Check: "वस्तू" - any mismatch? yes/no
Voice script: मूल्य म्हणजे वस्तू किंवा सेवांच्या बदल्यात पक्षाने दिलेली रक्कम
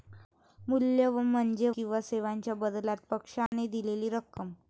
yes